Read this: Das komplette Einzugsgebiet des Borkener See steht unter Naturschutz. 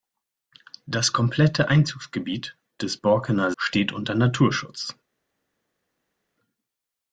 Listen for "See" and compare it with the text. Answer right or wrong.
wrong